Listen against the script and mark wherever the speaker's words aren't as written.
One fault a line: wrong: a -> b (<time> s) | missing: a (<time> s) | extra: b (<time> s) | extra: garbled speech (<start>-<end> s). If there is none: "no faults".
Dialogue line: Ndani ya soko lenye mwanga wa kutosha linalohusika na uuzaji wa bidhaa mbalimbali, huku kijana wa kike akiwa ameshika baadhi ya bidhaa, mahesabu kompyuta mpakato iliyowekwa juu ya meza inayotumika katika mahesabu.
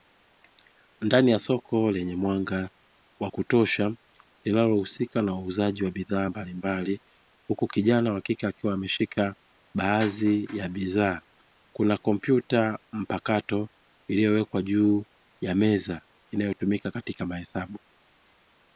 wrong: mahesabu -> kuna (11.7 s)